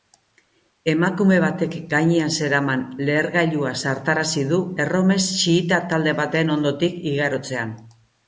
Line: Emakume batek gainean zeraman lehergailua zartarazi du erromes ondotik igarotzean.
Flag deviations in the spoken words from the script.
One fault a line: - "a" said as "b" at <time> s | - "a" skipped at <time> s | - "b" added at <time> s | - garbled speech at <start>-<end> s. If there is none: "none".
- "xiita talde baten" added at 5.4 s